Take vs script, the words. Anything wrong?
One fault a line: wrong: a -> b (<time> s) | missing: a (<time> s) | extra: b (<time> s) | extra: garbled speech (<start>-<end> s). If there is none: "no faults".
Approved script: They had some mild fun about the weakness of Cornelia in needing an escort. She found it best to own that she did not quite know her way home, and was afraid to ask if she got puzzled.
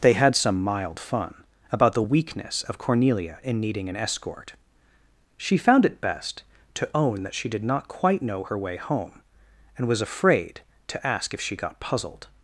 no faults